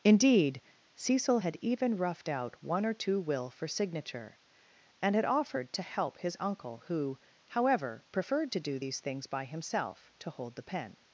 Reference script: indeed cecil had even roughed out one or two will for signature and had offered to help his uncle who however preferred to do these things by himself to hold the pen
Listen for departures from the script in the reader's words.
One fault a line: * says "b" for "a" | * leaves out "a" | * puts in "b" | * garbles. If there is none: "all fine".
all fine